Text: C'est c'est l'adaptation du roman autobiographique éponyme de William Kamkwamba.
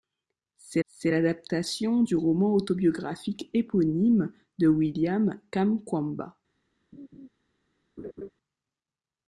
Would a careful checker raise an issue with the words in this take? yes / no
no